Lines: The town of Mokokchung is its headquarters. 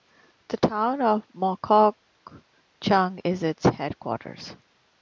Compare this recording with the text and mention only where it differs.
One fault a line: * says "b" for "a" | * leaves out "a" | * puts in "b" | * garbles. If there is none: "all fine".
all fine